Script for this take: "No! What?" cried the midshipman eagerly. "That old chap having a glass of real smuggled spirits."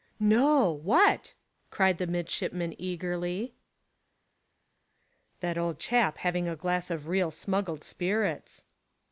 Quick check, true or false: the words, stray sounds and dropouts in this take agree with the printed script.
true